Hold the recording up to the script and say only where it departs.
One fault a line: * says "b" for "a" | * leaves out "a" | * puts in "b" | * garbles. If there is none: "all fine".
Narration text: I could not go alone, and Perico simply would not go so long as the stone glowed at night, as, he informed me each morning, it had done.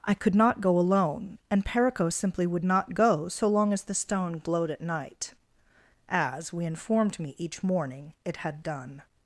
* says "we" for "he"